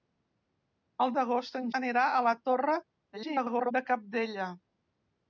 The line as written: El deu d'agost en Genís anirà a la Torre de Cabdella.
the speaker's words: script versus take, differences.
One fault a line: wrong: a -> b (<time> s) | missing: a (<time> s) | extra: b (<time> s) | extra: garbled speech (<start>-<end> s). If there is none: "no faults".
missing: deu (1.1 s)
missing: Genís (1.6 s)
extra: garbled speech (3.1-3.7 s)